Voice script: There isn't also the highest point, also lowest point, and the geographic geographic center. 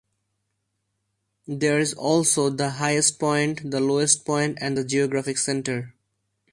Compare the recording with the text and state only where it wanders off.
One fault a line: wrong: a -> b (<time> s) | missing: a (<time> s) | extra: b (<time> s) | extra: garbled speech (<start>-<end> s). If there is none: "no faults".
wrong: isn't -> is (1.8 s)
wrong: also -> the (3.7 s)
missing: geographic (5.4 s)